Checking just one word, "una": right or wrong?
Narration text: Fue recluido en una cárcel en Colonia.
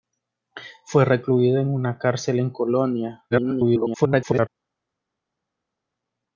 right